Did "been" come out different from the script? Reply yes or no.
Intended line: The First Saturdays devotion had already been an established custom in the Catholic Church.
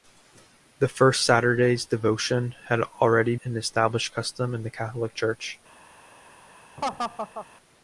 yes